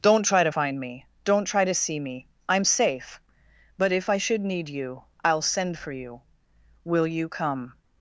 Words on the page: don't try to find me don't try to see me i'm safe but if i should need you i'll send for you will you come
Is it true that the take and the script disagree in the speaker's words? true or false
false